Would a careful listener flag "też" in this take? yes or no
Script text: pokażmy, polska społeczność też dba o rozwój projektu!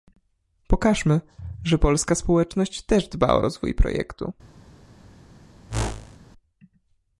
no